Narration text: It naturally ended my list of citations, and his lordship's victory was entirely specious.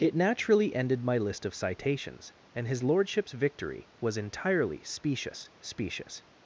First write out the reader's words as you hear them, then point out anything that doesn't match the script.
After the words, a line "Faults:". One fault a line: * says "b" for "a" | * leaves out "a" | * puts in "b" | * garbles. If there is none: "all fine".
It naturally ended my list of citations, and his lordship's victory was entirely specious specious.
Faults:
* puts in "specious"